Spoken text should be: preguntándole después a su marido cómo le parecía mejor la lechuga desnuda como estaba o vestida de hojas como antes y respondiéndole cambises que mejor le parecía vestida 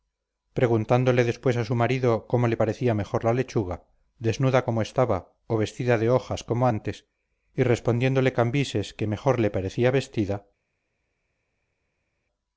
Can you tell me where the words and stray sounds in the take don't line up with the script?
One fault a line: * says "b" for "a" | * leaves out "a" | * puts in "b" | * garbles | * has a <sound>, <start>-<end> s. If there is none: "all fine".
all fine